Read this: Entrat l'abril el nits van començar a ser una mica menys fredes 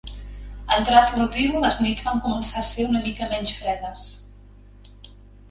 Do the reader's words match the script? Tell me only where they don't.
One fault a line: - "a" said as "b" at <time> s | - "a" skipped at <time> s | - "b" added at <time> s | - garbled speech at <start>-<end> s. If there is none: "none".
- "el" said as "les" at 1.6 s